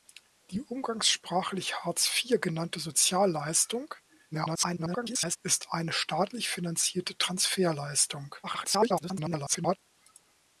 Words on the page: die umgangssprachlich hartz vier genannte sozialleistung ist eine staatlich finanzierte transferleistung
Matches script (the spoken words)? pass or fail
fail